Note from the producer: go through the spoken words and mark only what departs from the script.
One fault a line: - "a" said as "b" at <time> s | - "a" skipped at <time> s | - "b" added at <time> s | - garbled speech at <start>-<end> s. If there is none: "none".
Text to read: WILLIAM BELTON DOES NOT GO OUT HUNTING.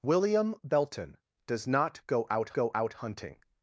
- "GO OUT" added at 2.5 s